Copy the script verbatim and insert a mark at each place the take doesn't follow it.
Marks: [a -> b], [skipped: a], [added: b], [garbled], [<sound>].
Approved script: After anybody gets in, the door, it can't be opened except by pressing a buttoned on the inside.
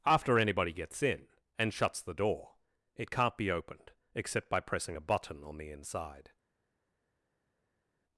After anybody gets in, [added: and shuts] the door, it can't be opened except by pressing a [buttoned -> button] on the inside.